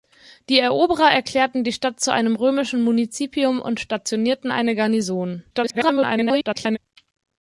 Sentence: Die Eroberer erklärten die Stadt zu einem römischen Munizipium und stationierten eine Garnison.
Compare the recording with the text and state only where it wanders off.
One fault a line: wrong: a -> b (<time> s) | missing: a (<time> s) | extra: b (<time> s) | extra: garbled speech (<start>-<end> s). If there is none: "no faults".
extra: garbled speech (5.5-6.8 s)